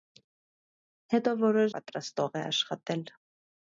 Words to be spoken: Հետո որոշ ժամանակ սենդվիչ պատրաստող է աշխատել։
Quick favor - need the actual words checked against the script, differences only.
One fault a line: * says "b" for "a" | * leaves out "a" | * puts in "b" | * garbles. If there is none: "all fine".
* leaves out "ժամանակ սենդվիչ"